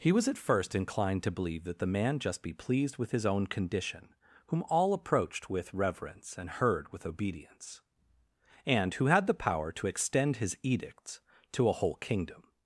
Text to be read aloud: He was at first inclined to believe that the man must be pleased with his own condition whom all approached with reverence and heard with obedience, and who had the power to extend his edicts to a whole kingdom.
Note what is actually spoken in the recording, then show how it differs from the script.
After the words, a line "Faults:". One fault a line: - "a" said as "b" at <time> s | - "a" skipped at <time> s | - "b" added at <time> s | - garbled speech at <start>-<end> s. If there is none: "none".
He was at first inclined to believe that the man just be pleased with his own condition whom all approached with reverence and heard with obedience, and who had the power to extend his edicts to a whole kingdom.
Faults:
- "must" said as "just" at 2.2 s